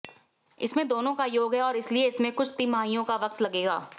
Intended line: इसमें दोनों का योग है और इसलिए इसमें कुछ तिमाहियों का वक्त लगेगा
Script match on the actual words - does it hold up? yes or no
yes